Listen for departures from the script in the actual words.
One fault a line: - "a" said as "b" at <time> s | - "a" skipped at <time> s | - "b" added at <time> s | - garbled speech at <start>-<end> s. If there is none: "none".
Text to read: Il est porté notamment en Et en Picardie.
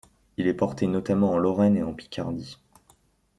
- "Lorraine" added at 1.4 s